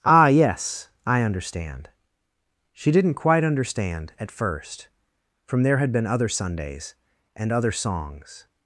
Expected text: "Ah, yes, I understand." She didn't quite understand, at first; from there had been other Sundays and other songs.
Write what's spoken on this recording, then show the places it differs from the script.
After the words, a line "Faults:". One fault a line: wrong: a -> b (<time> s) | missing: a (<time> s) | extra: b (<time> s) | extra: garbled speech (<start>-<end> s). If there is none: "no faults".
"Ah, yes, I understand." She didn't quite understand, at first; from there had been other Sundays and other songs.
Faults:
no faults